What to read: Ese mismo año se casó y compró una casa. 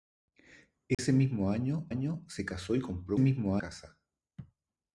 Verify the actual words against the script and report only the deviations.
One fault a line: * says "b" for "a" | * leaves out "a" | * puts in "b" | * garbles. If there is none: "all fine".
* puts in "año"
* says "mismo" for "una"